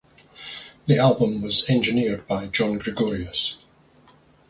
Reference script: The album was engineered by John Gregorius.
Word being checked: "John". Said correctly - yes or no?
yes